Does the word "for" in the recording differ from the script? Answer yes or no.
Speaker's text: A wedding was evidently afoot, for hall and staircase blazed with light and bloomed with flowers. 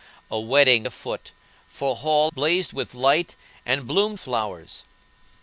no